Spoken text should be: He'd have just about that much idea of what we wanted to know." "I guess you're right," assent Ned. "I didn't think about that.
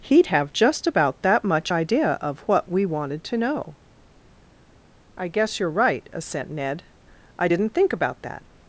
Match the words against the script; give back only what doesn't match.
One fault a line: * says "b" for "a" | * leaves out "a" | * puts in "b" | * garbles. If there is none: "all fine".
all fine